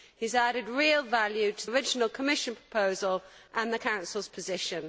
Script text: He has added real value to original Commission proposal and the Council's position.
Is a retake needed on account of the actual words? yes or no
no